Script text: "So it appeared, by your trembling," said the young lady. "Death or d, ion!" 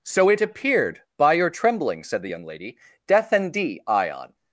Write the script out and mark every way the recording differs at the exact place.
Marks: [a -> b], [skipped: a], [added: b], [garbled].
"So it appeared, by your trembling," said the young lady. "Death [or -> and] d, ion!"